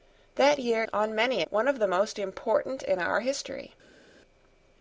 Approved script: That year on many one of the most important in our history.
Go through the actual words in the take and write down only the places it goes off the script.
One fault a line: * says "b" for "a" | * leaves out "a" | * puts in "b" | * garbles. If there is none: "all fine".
all fine